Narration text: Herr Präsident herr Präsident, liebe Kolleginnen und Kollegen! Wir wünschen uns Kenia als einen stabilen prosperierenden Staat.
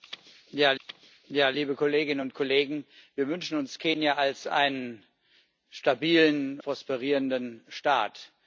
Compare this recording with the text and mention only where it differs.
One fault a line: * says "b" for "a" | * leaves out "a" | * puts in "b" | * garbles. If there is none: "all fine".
all fine